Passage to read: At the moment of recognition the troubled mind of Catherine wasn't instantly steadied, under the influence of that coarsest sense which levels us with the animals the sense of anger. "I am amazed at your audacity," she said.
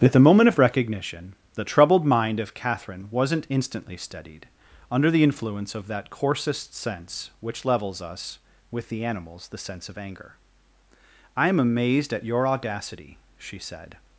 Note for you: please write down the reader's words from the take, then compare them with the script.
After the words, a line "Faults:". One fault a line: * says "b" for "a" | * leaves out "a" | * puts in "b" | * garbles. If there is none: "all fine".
At the moment of recognition the troubled mind of Catherine wasn't instantly steadied, under the influence of that coarsest sense which levels us with the animals the sense of anger. "I am amazed at your audacity," she said.
Faults:
all fine